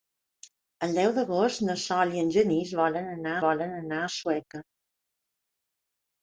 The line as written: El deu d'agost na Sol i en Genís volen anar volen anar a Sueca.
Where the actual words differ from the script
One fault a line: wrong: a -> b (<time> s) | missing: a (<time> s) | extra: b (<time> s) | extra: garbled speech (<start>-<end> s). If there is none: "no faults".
no faults